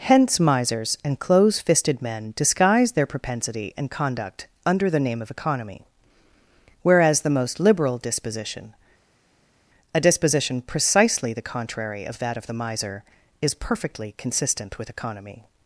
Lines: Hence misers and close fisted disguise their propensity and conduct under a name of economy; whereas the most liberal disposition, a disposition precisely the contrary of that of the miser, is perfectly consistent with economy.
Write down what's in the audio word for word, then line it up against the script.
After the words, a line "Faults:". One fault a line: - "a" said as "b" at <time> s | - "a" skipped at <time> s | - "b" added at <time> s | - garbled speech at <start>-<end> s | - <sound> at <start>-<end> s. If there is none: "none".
Hence misers and close fisted men disguise their propensity and conduct under the name of economy; whereas the most liberal disposition, a disposition precisely the contrary of that of the miser, is perfectly consistent with economy.
Faults:
- "men" added at 2.0 s
- "a" said as "the" at 4.9 s